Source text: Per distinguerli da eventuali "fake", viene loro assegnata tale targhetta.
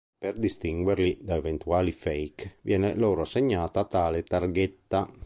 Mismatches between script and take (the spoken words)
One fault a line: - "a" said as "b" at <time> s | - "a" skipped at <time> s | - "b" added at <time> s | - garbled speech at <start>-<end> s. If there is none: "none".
none